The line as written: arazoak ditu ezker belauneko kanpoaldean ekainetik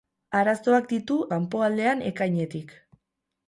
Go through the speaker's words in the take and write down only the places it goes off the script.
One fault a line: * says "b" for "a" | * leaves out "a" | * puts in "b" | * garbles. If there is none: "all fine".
* leaves out "ezker belauneko"